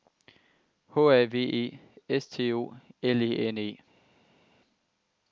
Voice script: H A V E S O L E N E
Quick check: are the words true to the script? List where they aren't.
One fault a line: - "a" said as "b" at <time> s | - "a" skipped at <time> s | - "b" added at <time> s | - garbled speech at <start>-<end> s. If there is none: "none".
- "T" added at 2.3 s